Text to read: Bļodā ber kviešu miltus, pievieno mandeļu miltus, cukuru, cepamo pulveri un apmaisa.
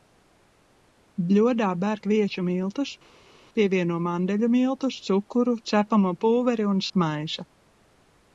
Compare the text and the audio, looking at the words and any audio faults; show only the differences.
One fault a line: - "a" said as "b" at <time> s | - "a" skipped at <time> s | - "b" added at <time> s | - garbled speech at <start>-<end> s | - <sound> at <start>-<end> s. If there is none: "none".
none